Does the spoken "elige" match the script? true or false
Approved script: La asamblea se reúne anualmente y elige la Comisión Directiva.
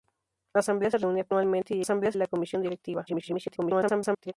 false